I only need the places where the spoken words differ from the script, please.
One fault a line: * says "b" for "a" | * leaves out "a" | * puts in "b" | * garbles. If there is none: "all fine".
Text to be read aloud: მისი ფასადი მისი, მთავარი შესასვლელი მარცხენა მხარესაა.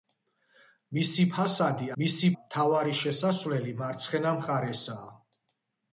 all fine